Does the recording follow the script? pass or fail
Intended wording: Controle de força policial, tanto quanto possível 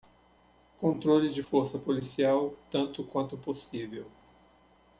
pass